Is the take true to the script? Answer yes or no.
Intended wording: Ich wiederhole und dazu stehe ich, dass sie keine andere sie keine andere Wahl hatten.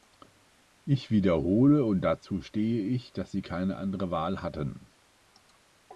no